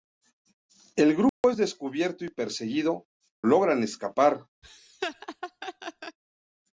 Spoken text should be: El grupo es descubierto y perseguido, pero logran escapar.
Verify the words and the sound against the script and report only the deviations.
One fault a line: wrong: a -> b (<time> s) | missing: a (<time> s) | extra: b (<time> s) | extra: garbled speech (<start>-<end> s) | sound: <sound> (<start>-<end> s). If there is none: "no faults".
sound: dropout (1.3-1.4 s)
missing: pero (3.1 s)
sound: laugh (4.6-6.2 s)